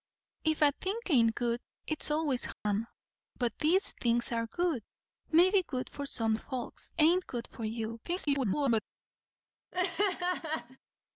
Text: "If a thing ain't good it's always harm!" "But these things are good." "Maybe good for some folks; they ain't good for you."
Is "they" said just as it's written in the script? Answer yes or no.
no